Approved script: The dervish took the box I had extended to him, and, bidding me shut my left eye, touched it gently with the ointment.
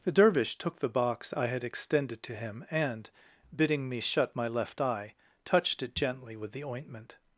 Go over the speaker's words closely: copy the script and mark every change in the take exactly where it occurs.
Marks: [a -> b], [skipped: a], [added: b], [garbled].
The dervish took the box I had extended to him, and, bidding me shut my left eye, touched it gently with the ointment.